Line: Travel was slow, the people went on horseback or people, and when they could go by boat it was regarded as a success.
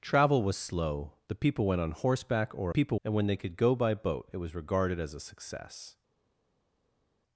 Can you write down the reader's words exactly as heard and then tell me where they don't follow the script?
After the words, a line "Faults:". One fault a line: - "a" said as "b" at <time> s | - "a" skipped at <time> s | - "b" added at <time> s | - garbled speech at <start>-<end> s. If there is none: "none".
Travel was slow, the people went on horseback or people, and when they could go by boat it was regarded as a success.
Faults:
none